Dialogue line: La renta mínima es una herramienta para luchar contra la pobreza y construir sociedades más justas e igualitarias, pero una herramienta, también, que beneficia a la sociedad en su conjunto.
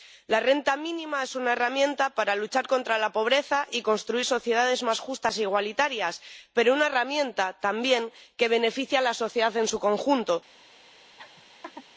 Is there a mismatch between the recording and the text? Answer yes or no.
no